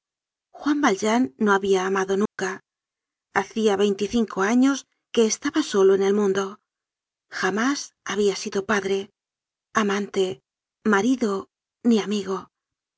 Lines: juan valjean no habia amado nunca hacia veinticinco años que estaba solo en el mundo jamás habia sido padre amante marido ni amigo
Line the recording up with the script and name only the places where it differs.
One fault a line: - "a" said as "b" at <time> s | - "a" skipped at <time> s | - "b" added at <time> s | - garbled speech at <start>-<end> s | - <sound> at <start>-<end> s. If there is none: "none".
- dropout at 2.3-2.4 s